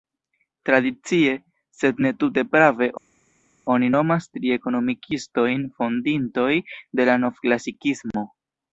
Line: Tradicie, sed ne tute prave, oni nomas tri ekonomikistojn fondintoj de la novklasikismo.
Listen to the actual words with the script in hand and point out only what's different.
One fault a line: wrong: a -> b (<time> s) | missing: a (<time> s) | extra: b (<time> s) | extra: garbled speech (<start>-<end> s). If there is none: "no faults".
no faults